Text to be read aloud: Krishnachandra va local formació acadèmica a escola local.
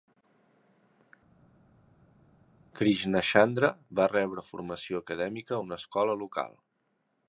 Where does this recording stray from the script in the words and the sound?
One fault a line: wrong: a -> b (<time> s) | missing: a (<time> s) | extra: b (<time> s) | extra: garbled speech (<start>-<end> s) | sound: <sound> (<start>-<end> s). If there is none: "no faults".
wrong: local -> rebre (4.1 s)
extra: una (5.7 s)